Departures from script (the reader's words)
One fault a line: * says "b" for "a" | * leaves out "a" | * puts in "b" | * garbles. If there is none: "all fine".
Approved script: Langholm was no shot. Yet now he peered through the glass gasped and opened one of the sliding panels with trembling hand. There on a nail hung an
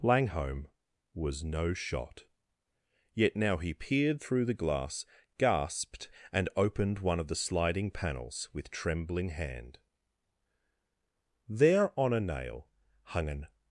all fine